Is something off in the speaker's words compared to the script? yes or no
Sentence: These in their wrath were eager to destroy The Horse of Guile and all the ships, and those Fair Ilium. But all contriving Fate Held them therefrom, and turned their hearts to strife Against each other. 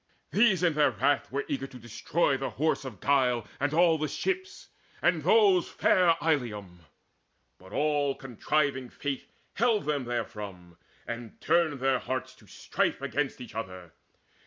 no